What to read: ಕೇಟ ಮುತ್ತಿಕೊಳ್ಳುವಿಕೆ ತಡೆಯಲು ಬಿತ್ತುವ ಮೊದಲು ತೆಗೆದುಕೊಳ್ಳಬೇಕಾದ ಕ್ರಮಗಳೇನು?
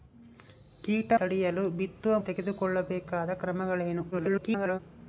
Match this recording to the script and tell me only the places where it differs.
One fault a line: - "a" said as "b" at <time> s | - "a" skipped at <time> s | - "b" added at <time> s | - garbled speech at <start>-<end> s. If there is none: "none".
- "ಮುತ್ತಿಕೊಳ್ಳುವಿಕೆ" skipped at 1.1 s
- "ಮೊದಲು" skipped at 2.2 s
- garbled speech at 4.1-4.8 s